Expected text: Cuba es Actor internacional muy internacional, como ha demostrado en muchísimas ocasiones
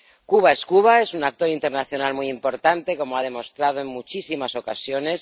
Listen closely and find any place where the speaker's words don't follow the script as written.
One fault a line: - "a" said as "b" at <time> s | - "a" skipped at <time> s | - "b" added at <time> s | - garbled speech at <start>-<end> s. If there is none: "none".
- "Cuba es un" added at 0.7 s
- "internacional" said as "importante" at 2.3 s